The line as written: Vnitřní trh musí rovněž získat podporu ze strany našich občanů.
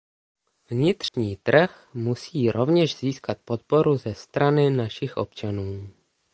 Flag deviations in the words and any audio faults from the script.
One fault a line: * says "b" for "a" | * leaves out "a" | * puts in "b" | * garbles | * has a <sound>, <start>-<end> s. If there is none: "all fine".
* has a dropout, 1.1-1.1 s